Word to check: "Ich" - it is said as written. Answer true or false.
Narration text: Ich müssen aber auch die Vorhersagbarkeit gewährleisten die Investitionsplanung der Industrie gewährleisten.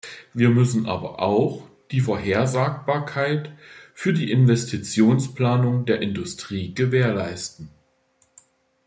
false